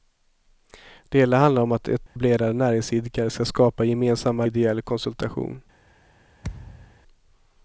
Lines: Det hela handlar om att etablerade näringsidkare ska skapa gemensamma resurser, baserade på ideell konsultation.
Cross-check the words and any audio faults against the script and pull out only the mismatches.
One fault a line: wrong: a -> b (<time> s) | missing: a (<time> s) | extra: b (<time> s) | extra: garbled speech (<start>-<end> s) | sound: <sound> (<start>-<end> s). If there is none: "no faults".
sound: dropout (2.1-2.2 s)
missing: resurser baserade på (4.5 s)
sound: thud (6.4-7.0 s)